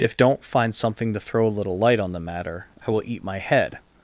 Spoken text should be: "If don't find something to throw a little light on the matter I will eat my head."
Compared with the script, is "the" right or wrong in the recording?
right